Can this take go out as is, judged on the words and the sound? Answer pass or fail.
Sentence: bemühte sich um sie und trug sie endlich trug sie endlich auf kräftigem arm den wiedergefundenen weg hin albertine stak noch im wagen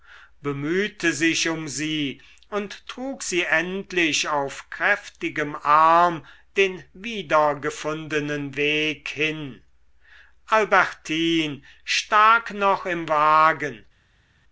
fail